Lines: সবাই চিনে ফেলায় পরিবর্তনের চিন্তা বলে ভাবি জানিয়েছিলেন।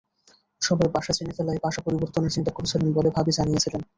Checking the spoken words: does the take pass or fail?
fail